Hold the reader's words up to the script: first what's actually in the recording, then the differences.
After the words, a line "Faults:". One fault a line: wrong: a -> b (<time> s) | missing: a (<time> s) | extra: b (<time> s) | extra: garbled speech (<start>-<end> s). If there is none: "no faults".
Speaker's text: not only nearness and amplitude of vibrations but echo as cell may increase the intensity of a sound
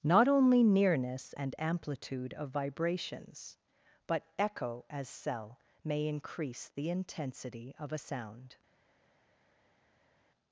not only nearness and amplitude of vibrations but echo as cell may increase the intensity of a sound
Faults:
no faults